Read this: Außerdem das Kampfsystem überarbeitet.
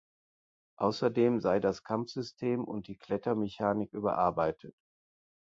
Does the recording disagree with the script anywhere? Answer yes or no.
yes